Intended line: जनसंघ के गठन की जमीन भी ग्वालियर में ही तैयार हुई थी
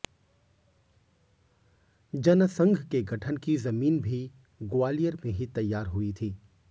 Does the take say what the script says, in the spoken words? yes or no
yes